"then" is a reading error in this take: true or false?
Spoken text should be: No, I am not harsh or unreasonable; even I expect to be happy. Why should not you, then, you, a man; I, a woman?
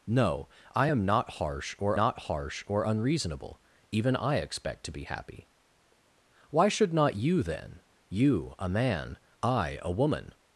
false